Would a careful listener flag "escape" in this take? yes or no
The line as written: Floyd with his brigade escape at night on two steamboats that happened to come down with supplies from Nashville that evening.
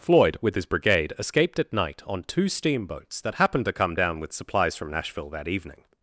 yes